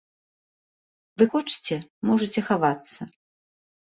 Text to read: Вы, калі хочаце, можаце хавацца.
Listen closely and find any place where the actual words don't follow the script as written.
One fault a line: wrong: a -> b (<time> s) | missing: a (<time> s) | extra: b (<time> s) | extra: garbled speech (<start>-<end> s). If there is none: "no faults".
missing: калі (1.3 s)